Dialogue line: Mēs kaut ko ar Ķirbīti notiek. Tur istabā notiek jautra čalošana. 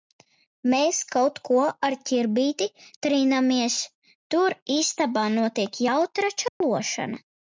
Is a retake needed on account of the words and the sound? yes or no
yes